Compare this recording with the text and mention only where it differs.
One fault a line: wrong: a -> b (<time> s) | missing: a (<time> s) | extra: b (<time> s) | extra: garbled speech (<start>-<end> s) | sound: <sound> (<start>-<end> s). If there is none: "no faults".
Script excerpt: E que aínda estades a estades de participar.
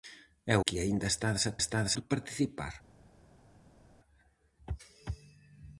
no faults